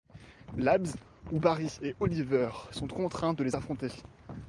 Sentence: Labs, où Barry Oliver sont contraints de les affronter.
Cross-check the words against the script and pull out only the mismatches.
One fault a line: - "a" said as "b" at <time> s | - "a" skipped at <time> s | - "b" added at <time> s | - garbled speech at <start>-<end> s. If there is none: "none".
- "et" added at 1.8 s